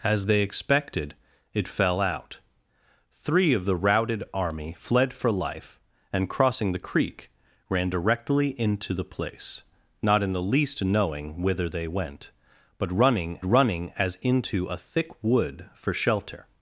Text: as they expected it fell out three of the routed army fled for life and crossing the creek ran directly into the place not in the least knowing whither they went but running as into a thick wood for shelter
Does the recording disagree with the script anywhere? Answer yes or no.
yes